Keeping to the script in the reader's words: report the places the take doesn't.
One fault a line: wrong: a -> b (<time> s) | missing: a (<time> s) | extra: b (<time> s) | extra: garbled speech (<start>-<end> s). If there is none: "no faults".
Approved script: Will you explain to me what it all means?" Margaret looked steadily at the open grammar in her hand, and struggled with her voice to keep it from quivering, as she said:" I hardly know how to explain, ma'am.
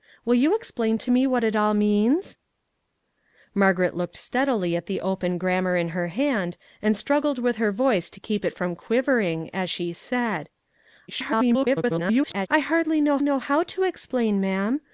extra: garbled speech (11.1-12.5 s)
extra: know (13.2 s)